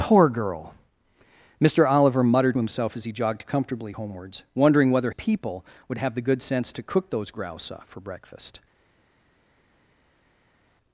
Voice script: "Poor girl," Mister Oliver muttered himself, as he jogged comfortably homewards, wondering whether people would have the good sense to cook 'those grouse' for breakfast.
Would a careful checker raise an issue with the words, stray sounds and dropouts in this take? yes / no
no